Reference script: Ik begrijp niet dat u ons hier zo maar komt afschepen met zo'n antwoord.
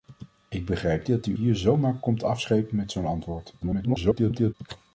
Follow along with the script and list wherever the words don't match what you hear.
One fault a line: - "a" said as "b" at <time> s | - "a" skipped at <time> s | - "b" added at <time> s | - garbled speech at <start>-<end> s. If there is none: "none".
- "niet" skipped at 1.1 s
- "ons" skipped at 1.4 s
- garbled speech at 3.6-4.5 s